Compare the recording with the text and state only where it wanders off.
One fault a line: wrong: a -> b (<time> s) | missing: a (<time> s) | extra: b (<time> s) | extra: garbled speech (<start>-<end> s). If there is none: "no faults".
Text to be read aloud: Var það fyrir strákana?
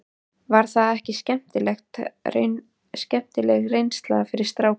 extra: ekki skemmtileg reynsla (1.0 s)